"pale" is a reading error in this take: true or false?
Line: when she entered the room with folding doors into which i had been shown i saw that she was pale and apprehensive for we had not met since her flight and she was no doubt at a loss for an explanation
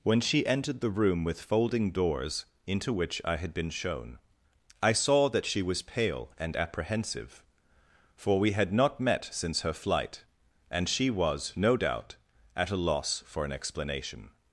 false